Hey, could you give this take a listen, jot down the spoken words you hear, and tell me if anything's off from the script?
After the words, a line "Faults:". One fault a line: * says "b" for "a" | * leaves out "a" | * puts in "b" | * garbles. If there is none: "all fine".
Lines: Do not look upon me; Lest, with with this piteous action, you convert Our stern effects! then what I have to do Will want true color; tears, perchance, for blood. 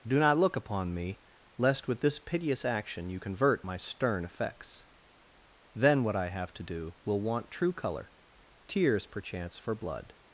Do not look upon me; Lest, with this piteous action, you convert My stern effects! then what I have to do Will want true color; tears, perchance, for blood.
Faults:
* leaves out "with"
* says "My" for "Our"